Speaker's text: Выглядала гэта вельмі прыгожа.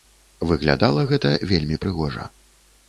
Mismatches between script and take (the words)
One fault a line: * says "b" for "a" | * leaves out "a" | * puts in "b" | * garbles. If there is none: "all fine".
all fine